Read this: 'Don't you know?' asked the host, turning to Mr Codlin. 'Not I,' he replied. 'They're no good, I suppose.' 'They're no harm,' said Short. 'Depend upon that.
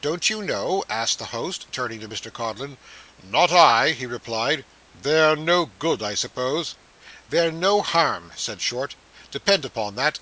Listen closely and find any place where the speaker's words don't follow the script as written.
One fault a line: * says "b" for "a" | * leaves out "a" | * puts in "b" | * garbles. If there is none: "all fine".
all fine